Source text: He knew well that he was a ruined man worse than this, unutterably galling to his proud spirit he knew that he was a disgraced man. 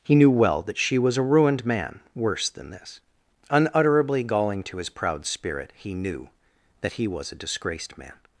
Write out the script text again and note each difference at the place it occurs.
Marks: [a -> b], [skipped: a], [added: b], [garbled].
He knew well that [he -> she] was a ruined man worse than this, unutterably galling to his proud spirit he knew that he was a disgraced man.